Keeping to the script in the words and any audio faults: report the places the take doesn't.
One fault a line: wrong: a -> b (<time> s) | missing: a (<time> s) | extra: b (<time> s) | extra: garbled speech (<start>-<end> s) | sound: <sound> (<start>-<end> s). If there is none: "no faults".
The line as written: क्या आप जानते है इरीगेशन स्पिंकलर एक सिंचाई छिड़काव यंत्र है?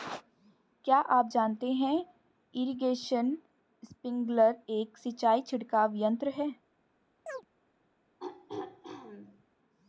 sound: chirp (7.3-7.5 s)
sound: throat clearing (8.2-9.4 s)